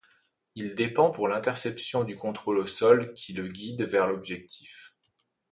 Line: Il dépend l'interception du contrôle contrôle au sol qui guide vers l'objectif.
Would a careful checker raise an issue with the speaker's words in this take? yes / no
yes